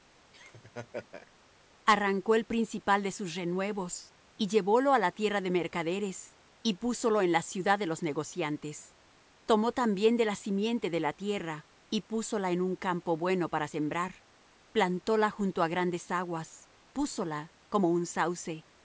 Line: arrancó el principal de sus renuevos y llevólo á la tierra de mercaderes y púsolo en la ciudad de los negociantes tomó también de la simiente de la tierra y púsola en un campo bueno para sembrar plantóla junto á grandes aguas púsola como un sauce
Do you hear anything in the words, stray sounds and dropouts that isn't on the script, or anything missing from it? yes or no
yes